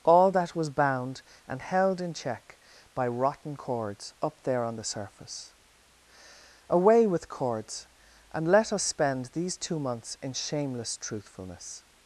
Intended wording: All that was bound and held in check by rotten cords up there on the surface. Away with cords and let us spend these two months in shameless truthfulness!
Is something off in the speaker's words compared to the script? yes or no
no